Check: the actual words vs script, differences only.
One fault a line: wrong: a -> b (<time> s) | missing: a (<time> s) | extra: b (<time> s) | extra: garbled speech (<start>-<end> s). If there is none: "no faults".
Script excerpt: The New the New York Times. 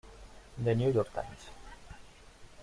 missing: the New (0.9 s)